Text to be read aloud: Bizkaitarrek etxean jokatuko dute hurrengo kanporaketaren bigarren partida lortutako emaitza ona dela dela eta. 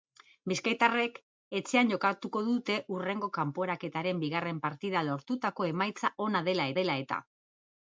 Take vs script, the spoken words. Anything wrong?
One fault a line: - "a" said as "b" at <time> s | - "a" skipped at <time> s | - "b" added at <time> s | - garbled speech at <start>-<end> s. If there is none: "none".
none